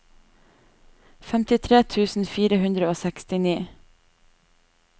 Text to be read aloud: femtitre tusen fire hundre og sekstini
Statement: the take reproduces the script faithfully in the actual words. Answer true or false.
true